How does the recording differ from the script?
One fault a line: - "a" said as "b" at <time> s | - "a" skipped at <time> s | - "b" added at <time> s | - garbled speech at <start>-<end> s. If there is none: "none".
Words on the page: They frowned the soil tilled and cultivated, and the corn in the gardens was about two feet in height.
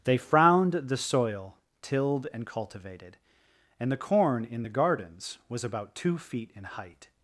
none